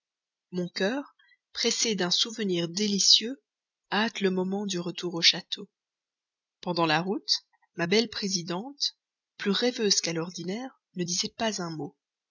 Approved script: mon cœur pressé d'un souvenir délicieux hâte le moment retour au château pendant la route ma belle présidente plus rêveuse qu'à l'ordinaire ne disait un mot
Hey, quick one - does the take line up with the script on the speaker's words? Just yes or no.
no